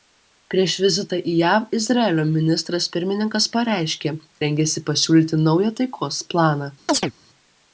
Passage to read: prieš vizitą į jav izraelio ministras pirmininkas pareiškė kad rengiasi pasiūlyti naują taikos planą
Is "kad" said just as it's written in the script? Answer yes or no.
no